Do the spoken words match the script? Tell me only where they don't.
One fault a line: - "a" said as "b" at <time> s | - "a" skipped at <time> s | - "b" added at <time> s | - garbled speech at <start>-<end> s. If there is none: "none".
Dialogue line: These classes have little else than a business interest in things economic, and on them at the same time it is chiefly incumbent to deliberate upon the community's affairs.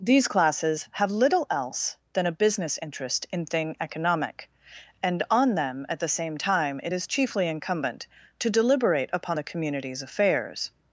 - "things" said as "thing" at 3.5 s